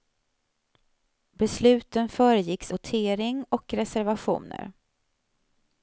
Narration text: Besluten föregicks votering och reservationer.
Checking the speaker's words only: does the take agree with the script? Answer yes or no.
yes